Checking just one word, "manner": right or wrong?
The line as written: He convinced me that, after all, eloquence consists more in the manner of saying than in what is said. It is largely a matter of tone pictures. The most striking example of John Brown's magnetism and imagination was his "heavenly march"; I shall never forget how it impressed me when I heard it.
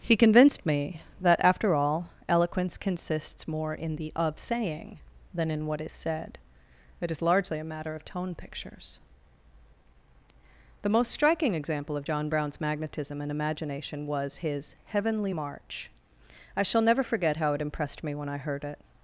wrong